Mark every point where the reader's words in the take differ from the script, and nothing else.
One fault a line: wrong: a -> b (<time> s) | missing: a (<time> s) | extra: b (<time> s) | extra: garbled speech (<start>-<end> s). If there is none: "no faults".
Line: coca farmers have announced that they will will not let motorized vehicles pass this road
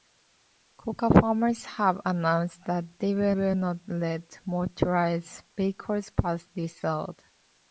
no faults